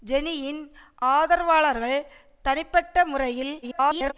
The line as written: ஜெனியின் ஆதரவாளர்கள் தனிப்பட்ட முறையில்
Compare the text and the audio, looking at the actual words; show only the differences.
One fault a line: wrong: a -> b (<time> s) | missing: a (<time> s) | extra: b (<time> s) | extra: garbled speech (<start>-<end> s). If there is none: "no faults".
extra: garbled speech (3.6-4.1 s)